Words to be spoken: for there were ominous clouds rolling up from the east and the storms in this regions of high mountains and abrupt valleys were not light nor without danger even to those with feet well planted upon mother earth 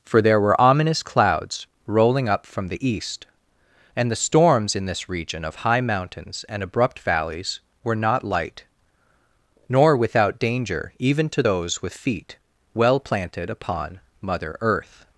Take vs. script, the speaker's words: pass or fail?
fail